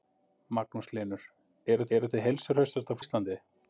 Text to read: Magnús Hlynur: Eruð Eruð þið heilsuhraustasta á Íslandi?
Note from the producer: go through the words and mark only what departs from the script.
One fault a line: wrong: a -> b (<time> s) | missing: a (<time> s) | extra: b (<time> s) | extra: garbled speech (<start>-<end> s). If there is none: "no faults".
no faults